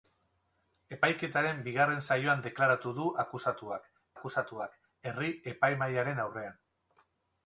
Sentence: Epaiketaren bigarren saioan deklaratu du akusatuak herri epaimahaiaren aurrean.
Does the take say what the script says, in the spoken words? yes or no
no